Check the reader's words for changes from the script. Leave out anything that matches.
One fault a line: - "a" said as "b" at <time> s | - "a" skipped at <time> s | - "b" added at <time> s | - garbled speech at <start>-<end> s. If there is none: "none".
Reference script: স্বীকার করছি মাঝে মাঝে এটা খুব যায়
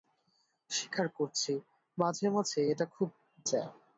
none